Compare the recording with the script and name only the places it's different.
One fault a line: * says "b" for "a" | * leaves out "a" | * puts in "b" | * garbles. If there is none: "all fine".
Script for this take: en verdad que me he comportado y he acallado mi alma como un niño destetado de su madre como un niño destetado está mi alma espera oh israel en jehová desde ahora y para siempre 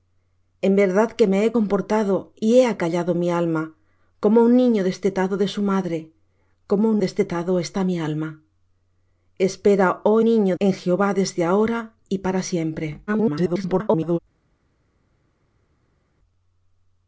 * leaves out "niño"
* says "niño" for "israel"
* garbles